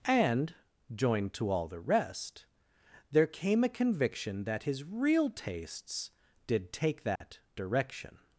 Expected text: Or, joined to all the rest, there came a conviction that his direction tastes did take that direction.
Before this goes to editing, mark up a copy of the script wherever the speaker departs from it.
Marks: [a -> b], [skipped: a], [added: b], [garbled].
[Or, -> And] joined to all the rest, there came a conviction that his [direction -> real] tastes did take that direction.